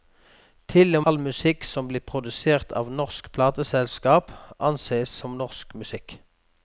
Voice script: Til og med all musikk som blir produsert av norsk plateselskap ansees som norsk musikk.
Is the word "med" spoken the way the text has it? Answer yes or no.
no